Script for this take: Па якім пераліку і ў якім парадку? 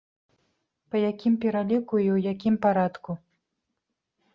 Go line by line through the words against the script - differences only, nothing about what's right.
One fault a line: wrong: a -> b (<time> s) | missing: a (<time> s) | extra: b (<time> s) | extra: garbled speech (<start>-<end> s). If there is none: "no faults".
no faults